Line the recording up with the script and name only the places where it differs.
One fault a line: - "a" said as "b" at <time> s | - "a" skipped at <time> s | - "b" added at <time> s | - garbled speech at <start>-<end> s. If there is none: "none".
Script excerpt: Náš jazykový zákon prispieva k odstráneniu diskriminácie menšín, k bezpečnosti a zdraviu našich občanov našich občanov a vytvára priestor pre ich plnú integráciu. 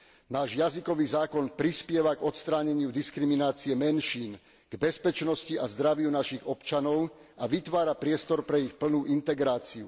- "našich občanov" skipped at 7.1 s